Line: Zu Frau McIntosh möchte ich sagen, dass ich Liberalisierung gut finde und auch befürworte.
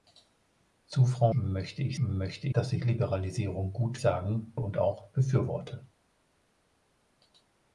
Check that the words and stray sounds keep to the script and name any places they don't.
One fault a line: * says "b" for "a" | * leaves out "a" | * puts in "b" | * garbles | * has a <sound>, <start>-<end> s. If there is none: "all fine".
* leaves out "McIntosh"
* says "möchte" for "sagen"
* says "sagen" for "finde"